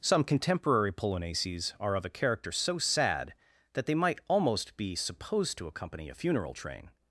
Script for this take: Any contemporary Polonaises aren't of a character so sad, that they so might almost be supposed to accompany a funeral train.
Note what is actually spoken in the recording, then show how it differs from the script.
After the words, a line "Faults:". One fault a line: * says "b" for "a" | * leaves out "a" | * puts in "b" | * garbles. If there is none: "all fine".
Some contemporary Polonaises are of a character so sad, that they might almost be supposed to accompany a funeral train.
Faults:
* says "Some" for "Any"
* says "are" for "aren't"
* leaves out "so"